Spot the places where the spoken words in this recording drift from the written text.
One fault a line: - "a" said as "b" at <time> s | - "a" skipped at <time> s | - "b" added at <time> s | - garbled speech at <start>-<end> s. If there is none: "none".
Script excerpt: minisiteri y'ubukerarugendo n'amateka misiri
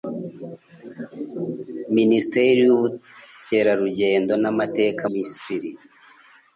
none